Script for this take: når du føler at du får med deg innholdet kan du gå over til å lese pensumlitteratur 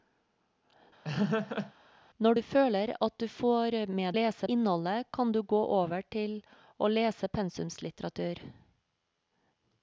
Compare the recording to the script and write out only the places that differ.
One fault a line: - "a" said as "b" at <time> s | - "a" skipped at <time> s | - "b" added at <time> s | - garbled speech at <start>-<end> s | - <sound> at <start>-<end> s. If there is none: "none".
- laugh at 1.0-1.7 s
- "deg" said as "lese" at 4.1 s